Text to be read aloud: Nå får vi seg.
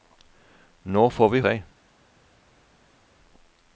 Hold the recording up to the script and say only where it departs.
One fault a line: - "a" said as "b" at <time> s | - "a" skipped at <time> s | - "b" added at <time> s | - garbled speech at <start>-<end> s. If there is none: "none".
none